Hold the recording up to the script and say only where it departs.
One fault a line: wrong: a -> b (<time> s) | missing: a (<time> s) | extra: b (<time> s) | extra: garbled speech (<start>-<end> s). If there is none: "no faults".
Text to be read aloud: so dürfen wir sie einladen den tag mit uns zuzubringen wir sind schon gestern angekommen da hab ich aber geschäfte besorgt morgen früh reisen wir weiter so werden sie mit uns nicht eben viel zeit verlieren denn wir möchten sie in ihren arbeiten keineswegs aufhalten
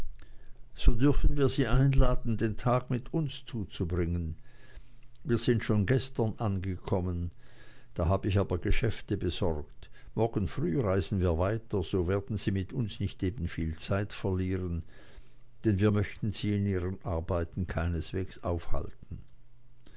no faults